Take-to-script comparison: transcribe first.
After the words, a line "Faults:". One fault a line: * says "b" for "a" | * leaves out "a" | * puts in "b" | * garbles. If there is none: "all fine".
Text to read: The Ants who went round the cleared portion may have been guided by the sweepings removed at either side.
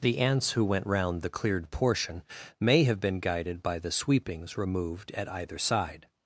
The Ants who went round the cleared portion may have been guided by the sweepings removed at either side.
Faults:
all fine